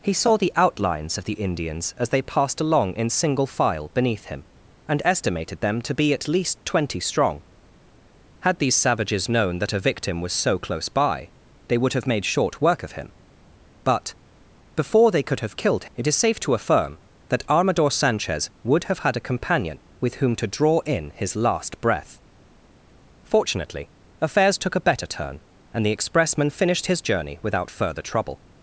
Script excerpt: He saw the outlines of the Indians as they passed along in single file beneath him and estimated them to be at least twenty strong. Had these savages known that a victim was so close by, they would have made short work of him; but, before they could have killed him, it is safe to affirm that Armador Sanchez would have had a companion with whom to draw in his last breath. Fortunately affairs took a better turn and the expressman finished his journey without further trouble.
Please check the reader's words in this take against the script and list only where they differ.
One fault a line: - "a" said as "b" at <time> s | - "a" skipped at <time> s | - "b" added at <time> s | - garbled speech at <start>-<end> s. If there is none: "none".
- "him" skipped at 15.8 s